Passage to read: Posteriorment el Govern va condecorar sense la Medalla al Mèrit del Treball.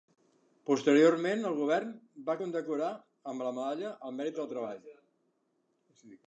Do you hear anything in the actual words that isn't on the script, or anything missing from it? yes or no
yes